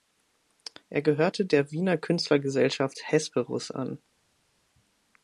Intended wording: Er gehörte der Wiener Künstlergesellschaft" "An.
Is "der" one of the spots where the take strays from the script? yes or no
no